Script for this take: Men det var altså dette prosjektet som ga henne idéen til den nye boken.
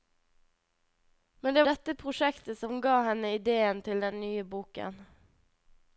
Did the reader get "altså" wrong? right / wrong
wrong